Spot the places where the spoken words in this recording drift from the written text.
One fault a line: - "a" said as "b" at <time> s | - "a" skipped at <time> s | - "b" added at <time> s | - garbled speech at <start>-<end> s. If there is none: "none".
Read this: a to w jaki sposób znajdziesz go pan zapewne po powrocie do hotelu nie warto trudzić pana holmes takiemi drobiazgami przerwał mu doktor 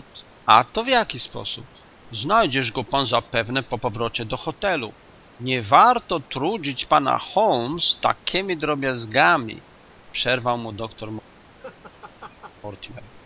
none